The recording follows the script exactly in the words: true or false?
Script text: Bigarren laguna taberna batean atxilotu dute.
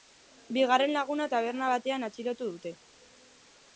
true